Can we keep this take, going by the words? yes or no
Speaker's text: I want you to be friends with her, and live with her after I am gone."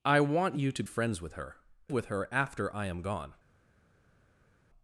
no